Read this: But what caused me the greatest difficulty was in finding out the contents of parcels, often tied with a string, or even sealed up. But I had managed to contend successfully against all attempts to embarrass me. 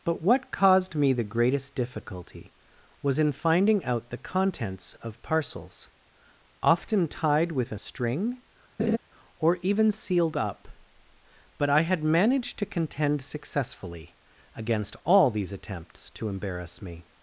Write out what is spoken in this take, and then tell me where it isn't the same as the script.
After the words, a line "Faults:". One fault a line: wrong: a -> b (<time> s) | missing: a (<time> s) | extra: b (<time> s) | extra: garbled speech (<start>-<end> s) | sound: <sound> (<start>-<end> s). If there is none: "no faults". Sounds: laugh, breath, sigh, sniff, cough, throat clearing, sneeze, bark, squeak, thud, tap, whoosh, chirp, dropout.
But what caused me the greatest difficulty was in finding out the contents of parcels, often tied with a string, or even sealed up. But I had managed to contend successfully against all these attempts to embarrass me.
Faults:
sound: laugh (8.8-9.0 s)
extra: these (15.3 s)